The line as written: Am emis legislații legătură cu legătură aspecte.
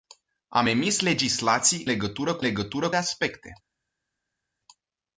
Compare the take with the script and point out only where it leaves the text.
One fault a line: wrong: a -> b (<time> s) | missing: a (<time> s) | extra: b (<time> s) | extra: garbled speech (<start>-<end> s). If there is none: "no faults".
no faults